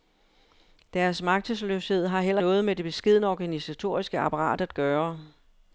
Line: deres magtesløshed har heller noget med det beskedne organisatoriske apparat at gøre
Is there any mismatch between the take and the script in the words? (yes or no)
no